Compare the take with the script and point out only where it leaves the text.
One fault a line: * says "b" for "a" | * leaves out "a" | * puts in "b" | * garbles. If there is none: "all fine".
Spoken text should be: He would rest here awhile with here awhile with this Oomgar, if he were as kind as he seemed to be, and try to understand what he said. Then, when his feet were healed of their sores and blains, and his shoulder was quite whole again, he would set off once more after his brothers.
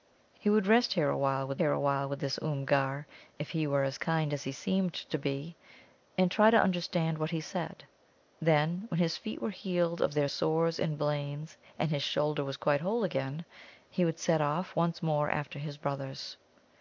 all fine